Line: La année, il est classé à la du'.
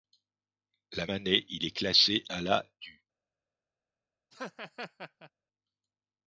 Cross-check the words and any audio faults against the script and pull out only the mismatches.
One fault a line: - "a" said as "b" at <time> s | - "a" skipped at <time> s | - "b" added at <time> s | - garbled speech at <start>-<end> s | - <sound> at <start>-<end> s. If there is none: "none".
- laugh at 4.3-5.3 s